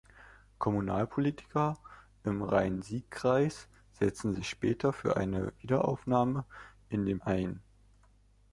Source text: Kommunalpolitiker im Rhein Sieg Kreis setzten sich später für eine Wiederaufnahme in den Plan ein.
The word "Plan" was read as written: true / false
false